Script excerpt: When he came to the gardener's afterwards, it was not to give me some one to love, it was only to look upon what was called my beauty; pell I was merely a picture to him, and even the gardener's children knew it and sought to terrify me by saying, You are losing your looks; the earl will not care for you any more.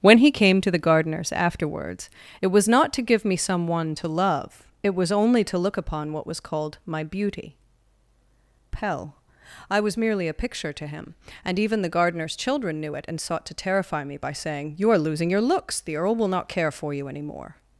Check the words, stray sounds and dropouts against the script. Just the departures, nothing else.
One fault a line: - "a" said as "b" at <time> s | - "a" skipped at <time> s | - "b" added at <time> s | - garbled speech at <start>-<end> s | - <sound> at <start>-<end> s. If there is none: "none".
none